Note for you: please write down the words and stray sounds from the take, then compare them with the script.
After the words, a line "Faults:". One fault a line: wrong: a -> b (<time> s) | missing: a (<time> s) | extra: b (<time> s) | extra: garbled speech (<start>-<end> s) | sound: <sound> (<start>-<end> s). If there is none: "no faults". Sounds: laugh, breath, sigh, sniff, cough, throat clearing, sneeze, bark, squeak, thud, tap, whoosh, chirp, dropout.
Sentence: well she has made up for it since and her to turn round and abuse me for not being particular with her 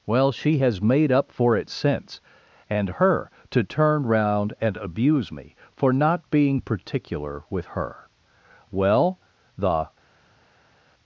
well she has made up for it since and her to turn round and abuse me for not being particular with her well the
Faults:
extra: well the (8.7 s)